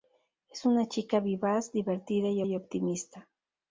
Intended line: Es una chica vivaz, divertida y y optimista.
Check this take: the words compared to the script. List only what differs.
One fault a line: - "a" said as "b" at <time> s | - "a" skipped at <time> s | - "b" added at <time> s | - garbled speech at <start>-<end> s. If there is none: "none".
none